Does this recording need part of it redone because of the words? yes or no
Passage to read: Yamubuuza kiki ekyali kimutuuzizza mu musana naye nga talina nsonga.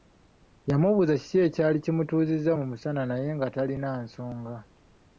no